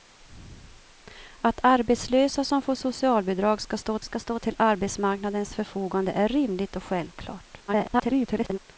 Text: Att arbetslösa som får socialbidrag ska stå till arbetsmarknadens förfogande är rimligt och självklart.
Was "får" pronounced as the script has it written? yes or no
yes